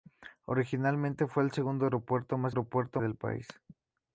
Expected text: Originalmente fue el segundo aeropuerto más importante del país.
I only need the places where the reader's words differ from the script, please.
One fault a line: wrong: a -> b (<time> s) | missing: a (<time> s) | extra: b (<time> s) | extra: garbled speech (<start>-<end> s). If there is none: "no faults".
wrong: importante -> aeropuerto (2.5 s)